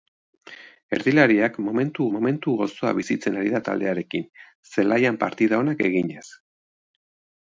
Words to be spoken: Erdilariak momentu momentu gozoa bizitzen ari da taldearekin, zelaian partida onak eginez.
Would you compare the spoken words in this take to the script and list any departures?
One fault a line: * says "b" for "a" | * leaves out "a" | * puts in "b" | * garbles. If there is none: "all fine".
all fine